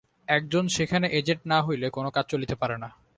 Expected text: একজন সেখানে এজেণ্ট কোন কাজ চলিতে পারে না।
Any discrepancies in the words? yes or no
yes